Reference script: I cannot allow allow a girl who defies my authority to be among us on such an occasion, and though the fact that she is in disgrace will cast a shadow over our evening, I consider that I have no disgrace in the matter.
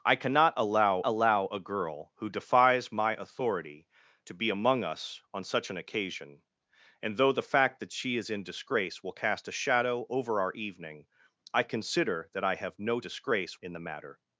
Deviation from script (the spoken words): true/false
false